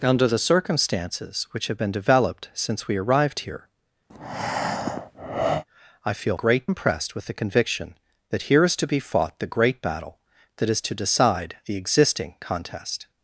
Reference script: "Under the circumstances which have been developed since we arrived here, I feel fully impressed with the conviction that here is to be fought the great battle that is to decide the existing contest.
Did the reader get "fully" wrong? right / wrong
wrong